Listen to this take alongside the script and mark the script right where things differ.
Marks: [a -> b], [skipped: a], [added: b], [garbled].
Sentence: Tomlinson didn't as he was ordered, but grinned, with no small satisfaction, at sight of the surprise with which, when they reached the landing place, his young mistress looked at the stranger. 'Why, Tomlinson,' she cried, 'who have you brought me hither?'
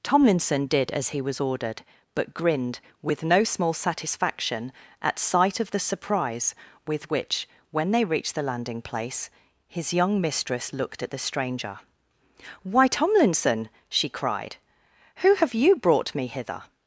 Tomlinson [didn't -> did] as he was ordered, but grinned, with no small satisfaction, at sight of the surprise with which, when they reached the landing place, his young mistress looked at the stranger. 'Why, Tomlinson,' she cried, 'who have you brought me hither?'